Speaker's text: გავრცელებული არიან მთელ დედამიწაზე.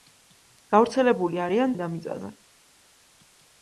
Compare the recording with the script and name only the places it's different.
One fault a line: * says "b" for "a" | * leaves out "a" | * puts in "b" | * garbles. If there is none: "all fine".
* leaves out "მთელ"